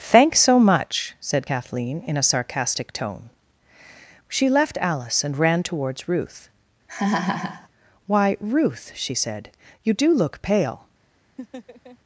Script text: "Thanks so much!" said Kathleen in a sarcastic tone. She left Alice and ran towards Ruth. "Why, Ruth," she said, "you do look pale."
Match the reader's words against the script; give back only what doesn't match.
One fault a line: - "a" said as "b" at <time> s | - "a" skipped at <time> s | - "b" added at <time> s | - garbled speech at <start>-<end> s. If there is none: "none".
none